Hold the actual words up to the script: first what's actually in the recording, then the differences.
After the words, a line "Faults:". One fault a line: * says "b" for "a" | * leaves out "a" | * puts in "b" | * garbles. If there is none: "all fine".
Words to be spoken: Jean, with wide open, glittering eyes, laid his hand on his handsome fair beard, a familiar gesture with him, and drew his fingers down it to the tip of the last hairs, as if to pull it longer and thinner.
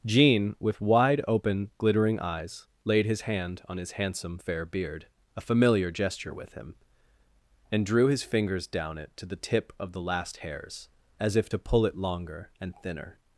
Jean, with wide open, glittering eyes, laid his hand on his handsome fair beard, a familiar gesture with him, and drew his fingers down it to the tip of the last hairs, as if to pull it longer and thinner.
Faults:
all fine